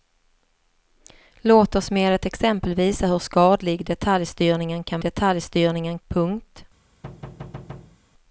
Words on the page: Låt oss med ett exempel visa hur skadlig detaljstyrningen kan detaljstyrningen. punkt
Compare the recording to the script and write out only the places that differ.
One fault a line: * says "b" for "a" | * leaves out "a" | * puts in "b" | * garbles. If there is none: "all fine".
all fine